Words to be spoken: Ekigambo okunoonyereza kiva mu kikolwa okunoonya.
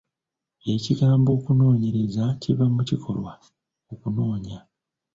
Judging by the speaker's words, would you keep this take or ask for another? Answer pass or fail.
pass